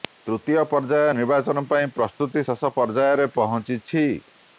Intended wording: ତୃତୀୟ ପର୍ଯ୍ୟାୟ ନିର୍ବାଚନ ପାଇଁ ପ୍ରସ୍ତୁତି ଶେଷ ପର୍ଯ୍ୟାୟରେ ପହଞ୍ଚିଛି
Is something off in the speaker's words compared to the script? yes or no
no